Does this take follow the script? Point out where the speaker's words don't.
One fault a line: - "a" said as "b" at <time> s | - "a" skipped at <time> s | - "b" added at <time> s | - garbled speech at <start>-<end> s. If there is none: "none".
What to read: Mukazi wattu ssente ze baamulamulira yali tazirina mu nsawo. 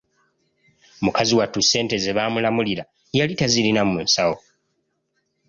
none